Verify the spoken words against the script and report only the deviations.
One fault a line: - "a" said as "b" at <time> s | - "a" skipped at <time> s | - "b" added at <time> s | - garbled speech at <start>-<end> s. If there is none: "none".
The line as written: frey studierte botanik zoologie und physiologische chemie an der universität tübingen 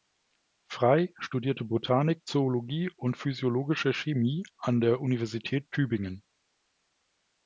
none